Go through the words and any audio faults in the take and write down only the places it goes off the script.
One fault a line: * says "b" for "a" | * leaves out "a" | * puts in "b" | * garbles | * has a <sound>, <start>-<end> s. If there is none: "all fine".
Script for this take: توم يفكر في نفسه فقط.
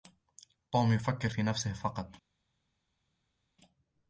all fine